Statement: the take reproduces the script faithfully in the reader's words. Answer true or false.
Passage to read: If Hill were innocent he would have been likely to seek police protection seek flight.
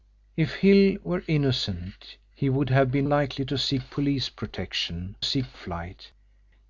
true